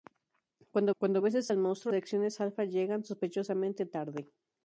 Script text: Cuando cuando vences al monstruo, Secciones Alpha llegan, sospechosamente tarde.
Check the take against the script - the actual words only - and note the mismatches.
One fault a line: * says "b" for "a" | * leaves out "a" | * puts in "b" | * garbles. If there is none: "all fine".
all fine